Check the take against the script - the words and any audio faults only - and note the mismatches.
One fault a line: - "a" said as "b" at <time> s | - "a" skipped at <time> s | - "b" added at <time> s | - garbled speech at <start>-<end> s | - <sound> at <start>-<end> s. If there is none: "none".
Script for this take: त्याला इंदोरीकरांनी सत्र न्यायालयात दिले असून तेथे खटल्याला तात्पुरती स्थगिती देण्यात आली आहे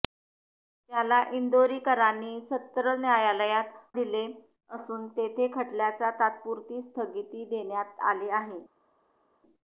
none